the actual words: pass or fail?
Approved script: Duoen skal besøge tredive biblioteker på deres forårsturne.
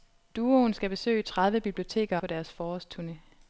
pass